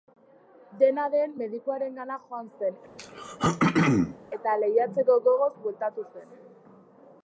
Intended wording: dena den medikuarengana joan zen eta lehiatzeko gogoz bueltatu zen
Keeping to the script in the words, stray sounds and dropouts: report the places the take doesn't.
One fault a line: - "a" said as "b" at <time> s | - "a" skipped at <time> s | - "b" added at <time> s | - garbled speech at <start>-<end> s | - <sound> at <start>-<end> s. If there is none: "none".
- throat clearing at 3.0-4.2 s